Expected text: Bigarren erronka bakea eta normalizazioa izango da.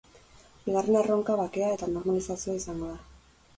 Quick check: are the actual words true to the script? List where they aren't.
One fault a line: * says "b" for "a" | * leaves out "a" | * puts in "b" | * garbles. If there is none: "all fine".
all fine